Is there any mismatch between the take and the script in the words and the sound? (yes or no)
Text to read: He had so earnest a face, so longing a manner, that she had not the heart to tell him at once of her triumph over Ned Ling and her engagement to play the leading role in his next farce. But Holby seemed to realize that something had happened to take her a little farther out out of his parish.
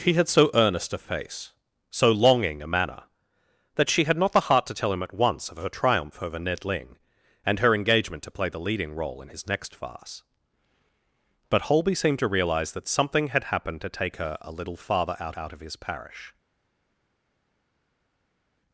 no